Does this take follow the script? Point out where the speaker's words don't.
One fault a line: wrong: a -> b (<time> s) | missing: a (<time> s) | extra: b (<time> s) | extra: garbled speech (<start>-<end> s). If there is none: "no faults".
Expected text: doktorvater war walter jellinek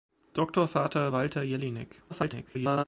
missing: war (1.1 s)
extra: garbled speech (2.1-2.8 s)